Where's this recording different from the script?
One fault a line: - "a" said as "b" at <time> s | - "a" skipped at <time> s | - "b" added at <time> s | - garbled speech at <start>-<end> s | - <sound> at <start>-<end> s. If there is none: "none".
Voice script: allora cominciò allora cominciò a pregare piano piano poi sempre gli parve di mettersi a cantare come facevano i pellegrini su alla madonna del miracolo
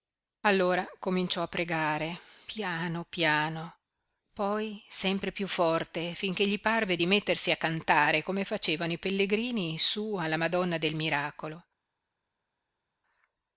- "allora cominciò" skipped at 1.4 s
- "piú forte finché" added at 5.3 s